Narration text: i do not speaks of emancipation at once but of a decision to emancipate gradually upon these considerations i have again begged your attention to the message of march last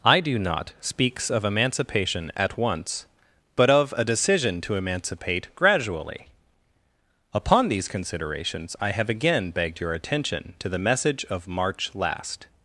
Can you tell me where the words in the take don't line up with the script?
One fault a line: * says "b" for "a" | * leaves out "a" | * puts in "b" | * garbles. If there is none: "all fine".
all fine